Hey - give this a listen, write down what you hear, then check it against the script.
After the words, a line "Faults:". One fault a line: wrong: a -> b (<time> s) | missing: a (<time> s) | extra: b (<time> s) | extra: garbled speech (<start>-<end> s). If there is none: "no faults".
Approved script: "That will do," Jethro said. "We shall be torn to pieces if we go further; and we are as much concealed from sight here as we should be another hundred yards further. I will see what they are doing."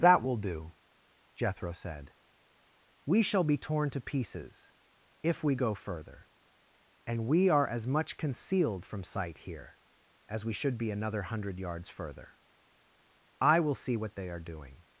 "That will do," Jethro said. "We shall be torn to pieces if we go further; and we are as much concealed from sight here as we should be another hundred yards further. I will see what they are doing."
Faults:
no faults